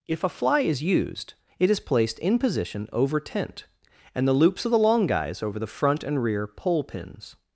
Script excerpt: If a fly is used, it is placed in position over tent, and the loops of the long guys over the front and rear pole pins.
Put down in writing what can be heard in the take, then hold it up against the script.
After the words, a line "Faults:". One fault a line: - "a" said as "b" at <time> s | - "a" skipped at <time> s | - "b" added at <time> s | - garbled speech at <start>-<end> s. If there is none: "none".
If a fly is used, it is placed in position over tent, and the loops of the long guys over the front and rear pole pins.
Faults:
none